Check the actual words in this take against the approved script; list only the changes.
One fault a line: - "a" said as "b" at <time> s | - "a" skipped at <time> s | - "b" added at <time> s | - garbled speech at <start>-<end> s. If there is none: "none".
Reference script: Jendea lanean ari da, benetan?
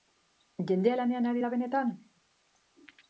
none